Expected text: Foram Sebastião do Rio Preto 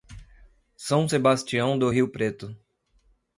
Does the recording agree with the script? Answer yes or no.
no